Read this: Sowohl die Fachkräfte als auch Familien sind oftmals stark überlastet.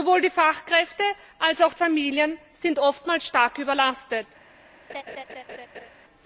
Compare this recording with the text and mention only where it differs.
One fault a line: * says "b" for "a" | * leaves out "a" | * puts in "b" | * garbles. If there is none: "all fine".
all fine